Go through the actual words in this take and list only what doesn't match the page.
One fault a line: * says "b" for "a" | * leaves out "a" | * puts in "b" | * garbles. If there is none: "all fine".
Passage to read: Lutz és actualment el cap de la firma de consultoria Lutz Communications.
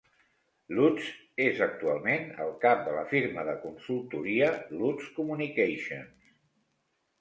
all fine